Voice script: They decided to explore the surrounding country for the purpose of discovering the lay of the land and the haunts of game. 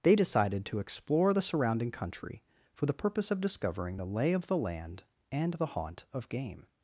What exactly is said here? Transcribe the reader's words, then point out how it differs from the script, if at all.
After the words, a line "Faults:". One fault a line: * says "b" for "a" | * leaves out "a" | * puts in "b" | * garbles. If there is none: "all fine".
They decided to explore the surrounding country for the purpose of discovering the lay of the land and the haunt of game.
Faults:
* says "haunt" for "haunts"